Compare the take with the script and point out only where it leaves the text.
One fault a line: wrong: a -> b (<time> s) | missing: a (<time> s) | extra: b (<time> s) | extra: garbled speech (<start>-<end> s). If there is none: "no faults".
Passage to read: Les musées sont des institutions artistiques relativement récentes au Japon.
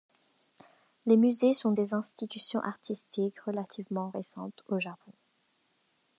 no faults